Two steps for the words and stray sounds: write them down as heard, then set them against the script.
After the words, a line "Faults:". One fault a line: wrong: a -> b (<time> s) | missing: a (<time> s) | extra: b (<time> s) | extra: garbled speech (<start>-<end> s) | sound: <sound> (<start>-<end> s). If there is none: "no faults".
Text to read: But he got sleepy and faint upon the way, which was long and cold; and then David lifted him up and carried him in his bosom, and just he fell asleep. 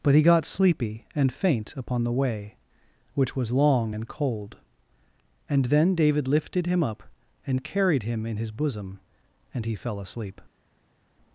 But he got sleepy and faint upon the way, which was long and cold; and then David lifted him up and carried him in his bosom, and he fell asleep.
Faults:
missing: just (9.7 s)